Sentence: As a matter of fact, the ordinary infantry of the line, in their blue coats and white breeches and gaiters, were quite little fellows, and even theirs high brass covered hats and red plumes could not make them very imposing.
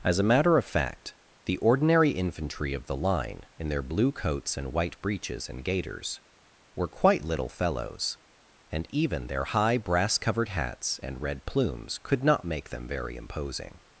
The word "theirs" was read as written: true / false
false